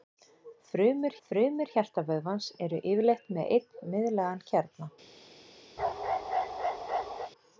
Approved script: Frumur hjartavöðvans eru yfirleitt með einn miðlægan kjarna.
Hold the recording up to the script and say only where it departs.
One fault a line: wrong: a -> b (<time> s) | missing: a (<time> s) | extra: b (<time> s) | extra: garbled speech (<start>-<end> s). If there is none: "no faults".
extra: frumur (1.3 s)